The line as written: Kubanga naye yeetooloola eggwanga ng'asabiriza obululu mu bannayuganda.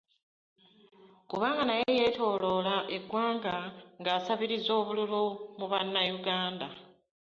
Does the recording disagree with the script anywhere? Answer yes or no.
no